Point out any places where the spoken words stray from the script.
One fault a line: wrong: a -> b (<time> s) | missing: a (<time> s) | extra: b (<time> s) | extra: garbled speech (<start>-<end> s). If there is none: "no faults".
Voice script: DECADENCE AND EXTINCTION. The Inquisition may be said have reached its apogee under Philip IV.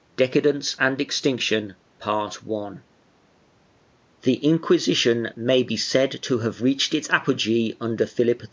extra: to (6.2 s)